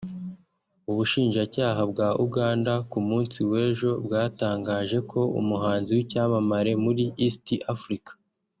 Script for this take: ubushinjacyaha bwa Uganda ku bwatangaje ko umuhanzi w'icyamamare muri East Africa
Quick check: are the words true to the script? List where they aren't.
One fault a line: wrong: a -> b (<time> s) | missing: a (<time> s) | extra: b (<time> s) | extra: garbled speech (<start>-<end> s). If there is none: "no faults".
extra: munsi w'ejo (3.1 s)